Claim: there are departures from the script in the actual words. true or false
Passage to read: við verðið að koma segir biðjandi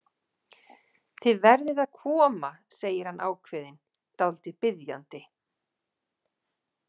true